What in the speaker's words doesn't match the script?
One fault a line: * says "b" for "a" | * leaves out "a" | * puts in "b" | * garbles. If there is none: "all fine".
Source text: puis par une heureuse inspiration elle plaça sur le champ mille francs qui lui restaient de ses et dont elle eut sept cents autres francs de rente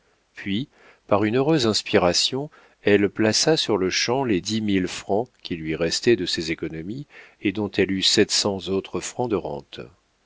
* puts in "les dix"
* puts in "économies"